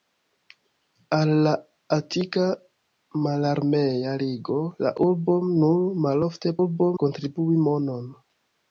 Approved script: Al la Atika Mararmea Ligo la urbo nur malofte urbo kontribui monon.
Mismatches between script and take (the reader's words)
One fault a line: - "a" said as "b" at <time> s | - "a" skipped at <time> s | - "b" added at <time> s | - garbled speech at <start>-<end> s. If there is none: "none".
none